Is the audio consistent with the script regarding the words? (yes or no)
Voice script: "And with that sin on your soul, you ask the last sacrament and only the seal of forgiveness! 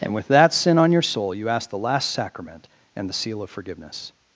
no